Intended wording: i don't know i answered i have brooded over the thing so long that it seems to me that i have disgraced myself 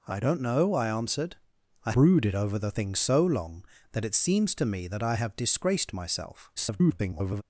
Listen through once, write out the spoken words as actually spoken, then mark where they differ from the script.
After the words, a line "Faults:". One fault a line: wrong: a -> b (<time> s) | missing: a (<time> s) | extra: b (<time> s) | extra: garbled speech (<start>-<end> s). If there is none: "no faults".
i don't know i answered i brooded over the thing so long that it seems to me that i have disgraced myself [garbled]
Faults:
missing: have (1.9 s)
extra: garbled speech (6.6-7.4 s)